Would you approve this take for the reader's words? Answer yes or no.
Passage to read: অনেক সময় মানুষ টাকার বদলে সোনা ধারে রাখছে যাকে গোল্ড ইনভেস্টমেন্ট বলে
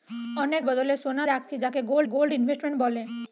no